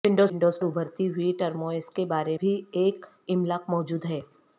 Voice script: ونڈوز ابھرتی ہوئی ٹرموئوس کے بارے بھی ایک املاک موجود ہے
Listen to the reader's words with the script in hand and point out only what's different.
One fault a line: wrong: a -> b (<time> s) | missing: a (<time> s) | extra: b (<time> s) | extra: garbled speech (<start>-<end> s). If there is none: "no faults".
no faults